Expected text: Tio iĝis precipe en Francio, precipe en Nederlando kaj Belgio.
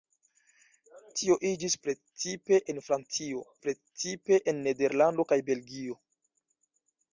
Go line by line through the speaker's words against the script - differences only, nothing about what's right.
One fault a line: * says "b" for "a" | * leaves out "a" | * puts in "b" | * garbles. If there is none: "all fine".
all fine